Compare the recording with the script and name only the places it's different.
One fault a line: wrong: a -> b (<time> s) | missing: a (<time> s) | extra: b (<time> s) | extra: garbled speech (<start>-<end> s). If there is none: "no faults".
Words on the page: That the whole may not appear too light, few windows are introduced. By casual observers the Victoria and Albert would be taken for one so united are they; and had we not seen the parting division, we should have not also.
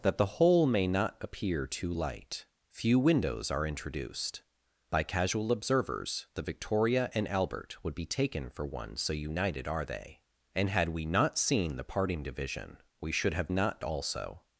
no faults